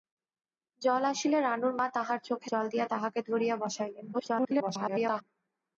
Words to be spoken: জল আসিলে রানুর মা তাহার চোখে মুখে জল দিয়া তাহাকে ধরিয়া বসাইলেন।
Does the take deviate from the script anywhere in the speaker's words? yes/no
yes